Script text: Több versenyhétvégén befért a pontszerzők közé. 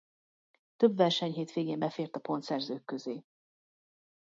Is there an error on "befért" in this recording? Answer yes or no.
no